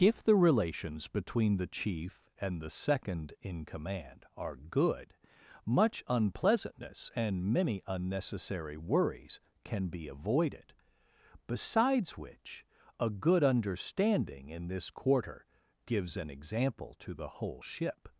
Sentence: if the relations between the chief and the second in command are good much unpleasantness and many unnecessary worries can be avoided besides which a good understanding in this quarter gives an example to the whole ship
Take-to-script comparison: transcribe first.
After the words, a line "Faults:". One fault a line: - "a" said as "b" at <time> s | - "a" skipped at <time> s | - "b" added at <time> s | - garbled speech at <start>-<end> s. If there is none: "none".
if the relations between the chief and the second in command are good much unpleasantness and many unnecessary worries can be avoided besides which a good understanding in this quarter gives an example to the whole ship
Faults:
none